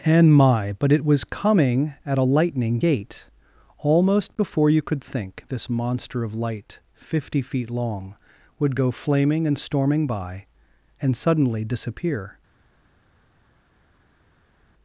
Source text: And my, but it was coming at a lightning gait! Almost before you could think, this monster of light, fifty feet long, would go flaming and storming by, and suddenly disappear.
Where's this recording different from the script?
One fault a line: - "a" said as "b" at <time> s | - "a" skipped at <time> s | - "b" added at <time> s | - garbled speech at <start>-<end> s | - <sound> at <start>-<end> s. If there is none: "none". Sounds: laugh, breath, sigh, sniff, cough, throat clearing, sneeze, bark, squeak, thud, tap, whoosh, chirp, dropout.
none